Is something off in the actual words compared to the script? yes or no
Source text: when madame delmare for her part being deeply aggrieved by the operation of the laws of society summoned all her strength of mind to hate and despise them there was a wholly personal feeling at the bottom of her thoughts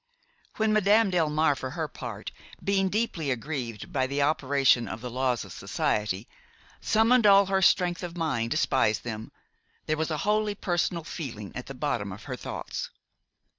yes